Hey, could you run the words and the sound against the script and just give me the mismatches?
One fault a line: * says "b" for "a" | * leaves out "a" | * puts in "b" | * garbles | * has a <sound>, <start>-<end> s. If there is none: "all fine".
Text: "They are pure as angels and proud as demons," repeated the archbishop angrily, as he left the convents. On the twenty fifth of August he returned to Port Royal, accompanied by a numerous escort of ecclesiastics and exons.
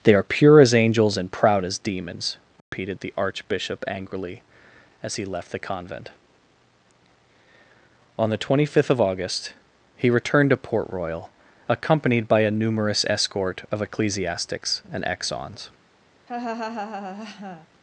* has a dropout, 2.6-2.7 s
* says "convent" for "convents"
* has a laugh, 16.3-17.7 s